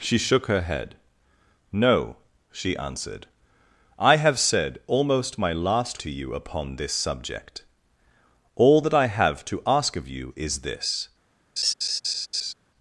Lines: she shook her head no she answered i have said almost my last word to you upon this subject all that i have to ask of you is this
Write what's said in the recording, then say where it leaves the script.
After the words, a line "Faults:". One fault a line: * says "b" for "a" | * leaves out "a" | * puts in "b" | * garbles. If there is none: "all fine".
she shook her head no she answered i have said almost my last to you upon this subject all that i have to ask of you is this
Faults:
* leaves out "word"